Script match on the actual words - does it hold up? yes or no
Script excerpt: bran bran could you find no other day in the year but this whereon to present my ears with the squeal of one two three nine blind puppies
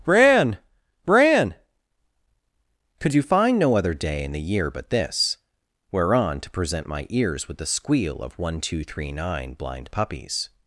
yes